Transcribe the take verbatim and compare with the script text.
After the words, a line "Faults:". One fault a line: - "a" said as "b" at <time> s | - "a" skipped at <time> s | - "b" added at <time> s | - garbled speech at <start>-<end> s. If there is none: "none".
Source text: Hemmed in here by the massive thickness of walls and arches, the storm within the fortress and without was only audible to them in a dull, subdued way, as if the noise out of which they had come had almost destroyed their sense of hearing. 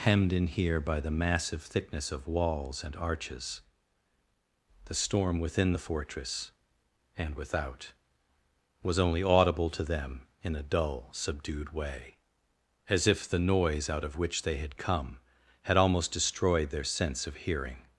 Hemmed in here by the massive thickness of walls and arches, the storm within the fortress and without was only audible to them in a dull, subdued way, as if the noise out of which they had come had almost destroyed their sense of hearing.
Faults:
none